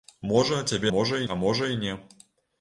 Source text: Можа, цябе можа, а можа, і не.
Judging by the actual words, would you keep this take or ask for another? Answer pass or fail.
pass